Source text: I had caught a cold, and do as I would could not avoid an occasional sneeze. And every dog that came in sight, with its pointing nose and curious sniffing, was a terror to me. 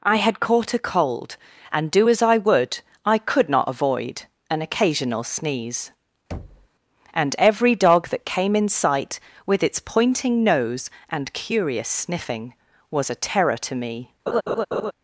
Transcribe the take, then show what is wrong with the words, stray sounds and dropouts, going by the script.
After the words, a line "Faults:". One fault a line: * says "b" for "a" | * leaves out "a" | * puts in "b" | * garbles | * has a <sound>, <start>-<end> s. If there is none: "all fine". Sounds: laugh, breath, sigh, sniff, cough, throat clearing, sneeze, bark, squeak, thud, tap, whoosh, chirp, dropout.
I had caught a cold, and do as I would I could not avoid an occasional sneeze. And every dog that came in sight, with its pointing nose and curious sniffing, was a terror to me.
Faults:
* puts in "I"
* has a thud, 6.3-6.7 s
* has a laugh, 14.3-14.9 s